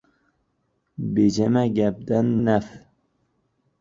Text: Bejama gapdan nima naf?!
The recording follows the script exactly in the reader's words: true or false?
false